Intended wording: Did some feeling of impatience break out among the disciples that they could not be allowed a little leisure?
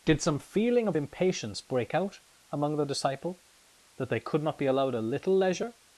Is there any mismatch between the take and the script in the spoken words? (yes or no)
yes